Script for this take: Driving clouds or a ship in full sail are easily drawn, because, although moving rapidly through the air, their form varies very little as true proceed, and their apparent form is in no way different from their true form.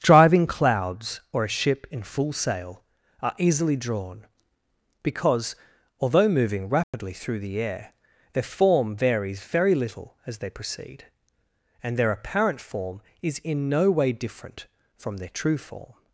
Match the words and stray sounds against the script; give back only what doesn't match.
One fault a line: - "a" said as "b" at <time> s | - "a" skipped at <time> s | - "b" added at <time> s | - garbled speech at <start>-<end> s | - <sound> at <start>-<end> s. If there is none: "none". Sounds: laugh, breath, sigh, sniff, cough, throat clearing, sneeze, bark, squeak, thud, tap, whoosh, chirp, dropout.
- dropout at 6.8-6.9 s
- "true" said as "they" at 10.4 s